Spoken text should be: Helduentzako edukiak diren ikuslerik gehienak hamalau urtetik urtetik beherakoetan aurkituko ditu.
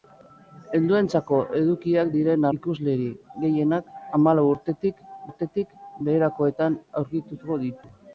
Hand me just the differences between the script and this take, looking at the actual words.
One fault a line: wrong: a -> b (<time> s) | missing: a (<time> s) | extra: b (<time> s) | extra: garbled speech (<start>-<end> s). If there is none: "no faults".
no faults